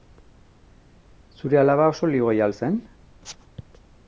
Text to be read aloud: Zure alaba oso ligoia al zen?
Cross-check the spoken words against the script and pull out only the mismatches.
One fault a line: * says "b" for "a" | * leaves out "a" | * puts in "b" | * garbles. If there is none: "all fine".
all fine